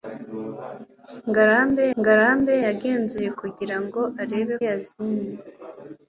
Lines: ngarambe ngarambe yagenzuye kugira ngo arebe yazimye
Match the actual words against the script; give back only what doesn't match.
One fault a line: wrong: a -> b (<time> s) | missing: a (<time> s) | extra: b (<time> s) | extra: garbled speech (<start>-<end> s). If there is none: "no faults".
no faults